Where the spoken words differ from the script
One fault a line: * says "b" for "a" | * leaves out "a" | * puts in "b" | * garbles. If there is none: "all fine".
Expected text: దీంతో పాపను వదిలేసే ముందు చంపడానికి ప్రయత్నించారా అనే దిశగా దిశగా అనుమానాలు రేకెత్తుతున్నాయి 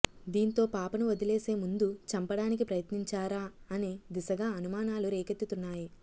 * leaves out "దిశగా"